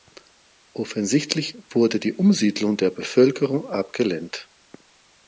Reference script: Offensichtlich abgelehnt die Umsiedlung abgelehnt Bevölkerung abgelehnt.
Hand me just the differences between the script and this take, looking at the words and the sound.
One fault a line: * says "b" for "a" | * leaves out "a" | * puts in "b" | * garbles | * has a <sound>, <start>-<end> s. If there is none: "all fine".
* says "wurde" for "abgelehnt"
* says "der" for "abgelehnt"